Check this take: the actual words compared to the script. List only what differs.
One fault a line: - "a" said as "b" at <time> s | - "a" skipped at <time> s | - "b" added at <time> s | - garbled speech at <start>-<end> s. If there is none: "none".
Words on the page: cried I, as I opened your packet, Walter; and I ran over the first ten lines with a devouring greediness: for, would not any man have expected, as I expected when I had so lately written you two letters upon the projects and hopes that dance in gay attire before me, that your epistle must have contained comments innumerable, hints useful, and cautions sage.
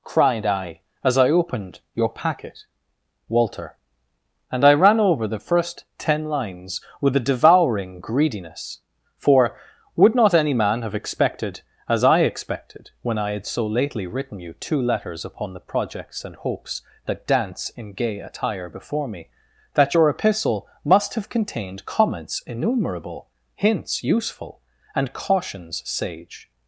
none